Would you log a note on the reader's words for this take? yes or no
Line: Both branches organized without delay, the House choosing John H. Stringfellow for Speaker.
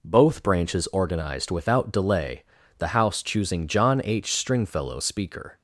yes